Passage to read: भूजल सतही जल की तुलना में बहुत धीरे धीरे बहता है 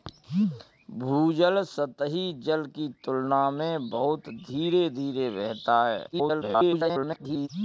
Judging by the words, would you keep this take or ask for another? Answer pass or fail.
fail